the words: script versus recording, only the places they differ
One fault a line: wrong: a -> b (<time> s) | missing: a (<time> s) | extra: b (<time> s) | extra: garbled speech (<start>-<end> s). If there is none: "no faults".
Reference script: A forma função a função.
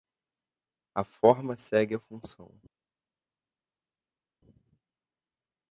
wrong: função -> segue (1.6 s)